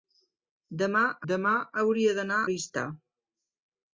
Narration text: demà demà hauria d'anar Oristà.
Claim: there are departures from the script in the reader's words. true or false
false